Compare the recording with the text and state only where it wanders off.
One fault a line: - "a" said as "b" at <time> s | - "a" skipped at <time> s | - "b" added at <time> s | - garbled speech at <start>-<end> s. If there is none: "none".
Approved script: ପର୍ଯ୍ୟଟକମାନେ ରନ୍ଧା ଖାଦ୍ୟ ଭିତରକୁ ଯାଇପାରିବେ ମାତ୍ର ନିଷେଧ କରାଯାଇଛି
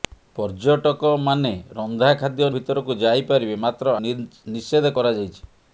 none